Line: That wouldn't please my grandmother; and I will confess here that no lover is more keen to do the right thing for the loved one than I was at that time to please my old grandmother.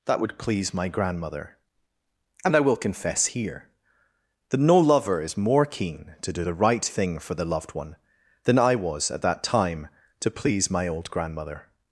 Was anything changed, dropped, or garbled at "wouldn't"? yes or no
yes